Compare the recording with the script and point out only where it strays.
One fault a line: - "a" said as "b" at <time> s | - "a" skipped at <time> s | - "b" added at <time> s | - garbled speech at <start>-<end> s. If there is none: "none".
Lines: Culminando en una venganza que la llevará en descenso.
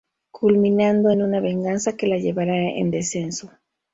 none